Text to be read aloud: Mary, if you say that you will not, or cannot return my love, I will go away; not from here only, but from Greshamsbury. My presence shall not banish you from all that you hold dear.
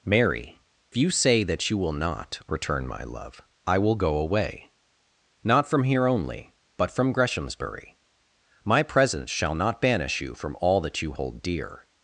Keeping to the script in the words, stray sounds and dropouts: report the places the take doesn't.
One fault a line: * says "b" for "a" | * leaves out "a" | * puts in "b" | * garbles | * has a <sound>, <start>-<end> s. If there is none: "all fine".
* leaves out "if"
* leaves out "or cannot"